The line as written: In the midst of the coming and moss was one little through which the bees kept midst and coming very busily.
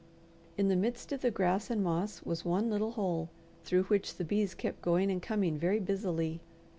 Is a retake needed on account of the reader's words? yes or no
yes